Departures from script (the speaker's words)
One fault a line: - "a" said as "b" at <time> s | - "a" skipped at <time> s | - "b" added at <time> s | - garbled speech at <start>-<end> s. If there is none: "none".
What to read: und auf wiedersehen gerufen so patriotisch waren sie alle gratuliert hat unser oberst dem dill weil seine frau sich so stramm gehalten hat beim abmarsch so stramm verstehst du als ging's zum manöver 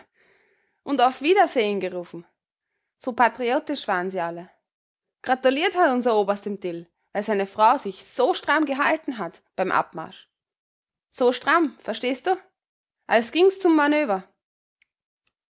none